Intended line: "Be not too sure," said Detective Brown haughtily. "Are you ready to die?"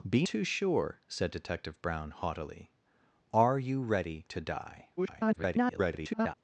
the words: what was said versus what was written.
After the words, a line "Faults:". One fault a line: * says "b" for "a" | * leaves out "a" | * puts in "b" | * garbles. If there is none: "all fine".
"Be too sure," said Detective Brown haughtily. "Are you ready to die?" [garbled]
Faults:
* leaves out "not"
* garbles